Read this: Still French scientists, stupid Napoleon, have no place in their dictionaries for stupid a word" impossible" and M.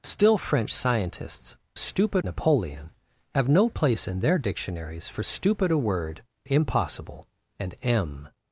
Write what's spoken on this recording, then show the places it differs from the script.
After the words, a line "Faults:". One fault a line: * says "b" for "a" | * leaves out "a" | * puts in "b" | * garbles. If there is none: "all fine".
Still French scientists, stupid Napoleon, have no place in their dictionaries for stupid a word" impossible" and M.
Faults:
all fine